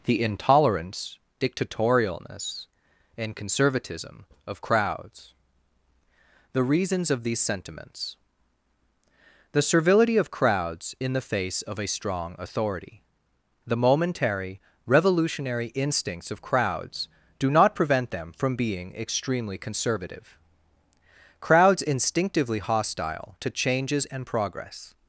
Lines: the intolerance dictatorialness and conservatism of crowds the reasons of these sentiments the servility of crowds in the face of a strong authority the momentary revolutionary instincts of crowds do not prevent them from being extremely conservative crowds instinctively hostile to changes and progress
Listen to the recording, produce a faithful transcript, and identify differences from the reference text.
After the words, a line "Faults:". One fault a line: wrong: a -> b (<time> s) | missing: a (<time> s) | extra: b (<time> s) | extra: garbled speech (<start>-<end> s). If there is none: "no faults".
the intolerance dictatorialness and conservatism of crowds the reasons of these sentiments the servility of crowds in the face of a strong authority the momentary revolutionary instincts of crowds do not prevent them from being extremely conservative crowds instinctively hostile to changes and progress
Faults:
no faults